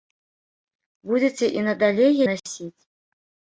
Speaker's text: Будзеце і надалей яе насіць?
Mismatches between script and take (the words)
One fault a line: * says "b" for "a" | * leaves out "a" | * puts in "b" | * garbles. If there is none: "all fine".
* leaves out "яе"